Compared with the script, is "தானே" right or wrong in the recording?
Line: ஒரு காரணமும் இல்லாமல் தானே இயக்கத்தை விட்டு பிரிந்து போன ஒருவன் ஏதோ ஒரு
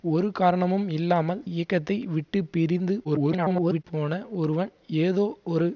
wrong